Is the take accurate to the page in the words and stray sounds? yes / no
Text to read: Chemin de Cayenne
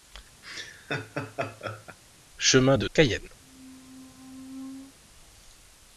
no